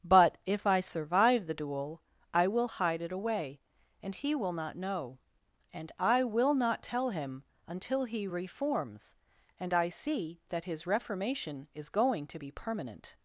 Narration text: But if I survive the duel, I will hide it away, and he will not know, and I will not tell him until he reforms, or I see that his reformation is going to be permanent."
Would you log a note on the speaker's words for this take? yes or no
yes